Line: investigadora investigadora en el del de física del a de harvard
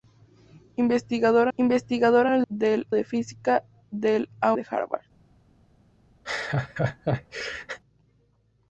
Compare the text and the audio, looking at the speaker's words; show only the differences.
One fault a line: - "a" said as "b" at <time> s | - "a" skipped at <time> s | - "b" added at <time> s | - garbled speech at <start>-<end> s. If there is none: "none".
none